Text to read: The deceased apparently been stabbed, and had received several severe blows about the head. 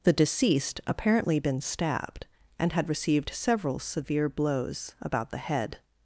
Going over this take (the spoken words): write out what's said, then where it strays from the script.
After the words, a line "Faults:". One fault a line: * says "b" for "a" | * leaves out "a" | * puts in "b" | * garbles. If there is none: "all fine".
The deceased apparently been stabbed, and had received several severe blows about the head.
Faults:
all fine